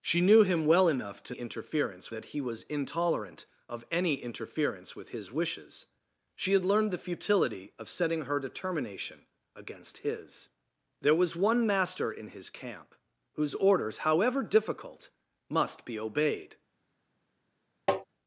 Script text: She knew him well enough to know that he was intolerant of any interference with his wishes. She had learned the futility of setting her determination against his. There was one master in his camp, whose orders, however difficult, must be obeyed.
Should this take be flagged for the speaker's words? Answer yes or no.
yes